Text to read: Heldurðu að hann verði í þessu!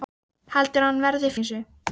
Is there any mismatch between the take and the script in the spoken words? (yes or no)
no